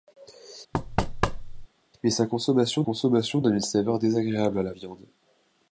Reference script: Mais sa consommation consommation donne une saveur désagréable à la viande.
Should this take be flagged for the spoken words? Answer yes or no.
no